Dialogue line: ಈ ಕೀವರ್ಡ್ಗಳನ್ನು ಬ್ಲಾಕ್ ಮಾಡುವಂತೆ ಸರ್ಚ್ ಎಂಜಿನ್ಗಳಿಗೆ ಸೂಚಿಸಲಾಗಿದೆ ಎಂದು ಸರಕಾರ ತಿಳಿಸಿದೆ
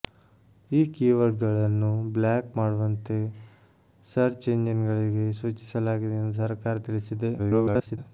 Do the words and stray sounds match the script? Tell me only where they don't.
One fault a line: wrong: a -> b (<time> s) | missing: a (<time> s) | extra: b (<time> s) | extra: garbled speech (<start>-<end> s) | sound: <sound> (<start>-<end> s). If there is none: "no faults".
extra: garbled speech (7.4-8.0 s)